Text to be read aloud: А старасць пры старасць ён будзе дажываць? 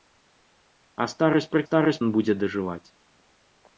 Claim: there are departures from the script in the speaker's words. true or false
false